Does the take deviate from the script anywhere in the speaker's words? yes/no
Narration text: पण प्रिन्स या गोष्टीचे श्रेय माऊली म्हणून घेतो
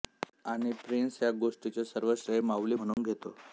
yes